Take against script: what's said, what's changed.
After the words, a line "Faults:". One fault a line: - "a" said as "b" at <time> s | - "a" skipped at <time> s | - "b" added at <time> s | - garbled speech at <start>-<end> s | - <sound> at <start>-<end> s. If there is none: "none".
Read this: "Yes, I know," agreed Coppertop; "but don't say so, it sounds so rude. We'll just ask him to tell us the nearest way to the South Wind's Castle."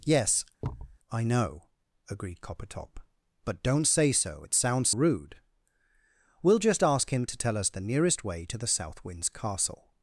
"Yes, I know," agreed Coppertop; "but don't say so, it sounds rude. We'll just ask him to tell us the nearest way to the South Wind's Castle."
Faults:
- thud at 0.6-1.0 s
- "so" skipped at 4.9 s